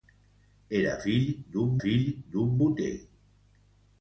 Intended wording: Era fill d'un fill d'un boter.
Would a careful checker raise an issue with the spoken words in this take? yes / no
no